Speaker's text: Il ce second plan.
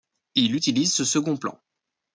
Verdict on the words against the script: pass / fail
fail